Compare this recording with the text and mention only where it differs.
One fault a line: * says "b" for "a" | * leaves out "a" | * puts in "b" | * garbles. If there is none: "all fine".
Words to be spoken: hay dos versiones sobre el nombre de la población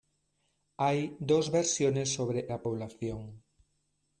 * leaves out "el nombre de"